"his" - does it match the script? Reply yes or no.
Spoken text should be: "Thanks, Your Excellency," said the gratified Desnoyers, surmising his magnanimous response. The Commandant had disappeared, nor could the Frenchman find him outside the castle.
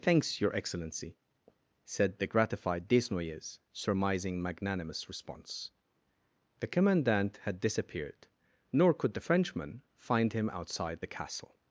no